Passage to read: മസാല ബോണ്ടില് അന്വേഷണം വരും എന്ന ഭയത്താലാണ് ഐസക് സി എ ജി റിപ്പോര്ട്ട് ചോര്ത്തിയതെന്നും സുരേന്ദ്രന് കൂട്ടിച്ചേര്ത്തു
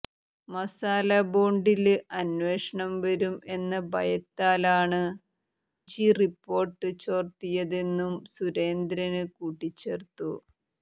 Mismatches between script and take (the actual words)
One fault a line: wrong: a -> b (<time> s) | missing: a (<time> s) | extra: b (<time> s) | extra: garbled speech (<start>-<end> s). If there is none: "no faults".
missing: ഐസക് സി എ (5.0 s)